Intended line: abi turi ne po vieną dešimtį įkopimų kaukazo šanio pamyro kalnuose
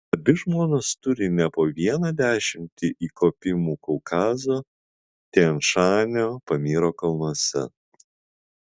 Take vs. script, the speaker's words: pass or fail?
fail